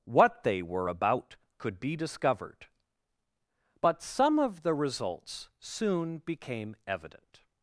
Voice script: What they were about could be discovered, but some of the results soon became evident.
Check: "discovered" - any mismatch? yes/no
no